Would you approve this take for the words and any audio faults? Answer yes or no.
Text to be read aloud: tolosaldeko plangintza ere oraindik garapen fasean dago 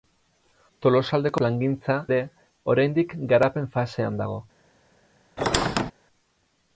no